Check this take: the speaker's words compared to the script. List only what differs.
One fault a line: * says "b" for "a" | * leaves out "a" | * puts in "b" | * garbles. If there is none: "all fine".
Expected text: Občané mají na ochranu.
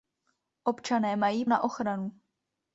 all fine